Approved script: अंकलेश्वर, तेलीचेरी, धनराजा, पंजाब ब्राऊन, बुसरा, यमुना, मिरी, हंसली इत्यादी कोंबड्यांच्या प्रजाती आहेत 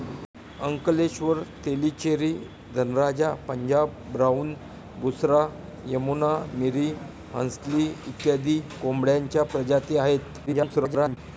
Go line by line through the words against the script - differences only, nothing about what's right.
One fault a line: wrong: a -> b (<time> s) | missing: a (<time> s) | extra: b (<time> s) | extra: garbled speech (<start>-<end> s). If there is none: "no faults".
extra: garbled speech (10.5-11.2 s)